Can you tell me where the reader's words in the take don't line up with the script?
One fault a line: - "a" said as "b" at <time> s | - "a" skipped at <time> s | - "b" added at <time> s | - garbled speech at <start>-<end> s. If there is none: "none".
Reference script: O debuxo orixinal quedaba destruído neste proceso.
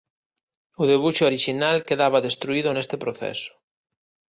none